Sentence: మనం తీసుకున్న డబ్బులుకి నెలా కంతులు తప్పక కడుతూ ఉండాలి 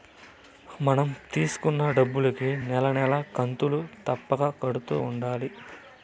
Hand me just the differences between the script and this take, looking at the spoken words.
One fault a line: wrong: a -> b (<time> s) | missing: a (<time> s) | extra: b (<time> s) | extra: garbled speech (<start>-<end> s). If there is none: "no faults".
extra: నెల (2.6 s)